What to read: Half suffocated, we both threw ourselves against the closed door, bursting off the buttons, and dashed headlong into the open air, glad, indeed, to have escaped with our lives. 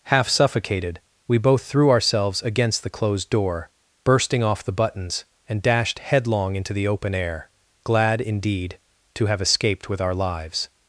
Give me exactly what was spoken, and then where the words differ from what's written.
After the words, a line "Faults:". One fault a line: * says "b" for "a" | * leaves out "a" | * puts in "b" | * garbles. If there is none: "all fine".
Half suffocated, we both threw ourselves against the closed door, bursting off the buttons, and dashed headlong into the open air, glad, indeed, to have escaped with our lives.
Faults:
all fine